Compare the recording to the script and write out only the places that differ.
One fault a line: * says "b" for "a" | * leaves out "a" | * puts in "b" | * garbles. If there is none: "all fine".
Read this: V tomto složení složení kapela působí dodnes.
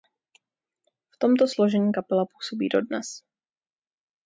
* leaves out "složení"